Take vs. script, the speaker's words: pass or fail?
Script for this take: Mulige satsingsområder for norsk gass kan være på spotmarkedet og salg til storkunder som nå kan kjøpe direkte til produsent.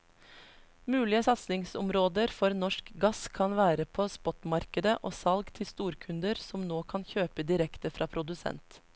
fail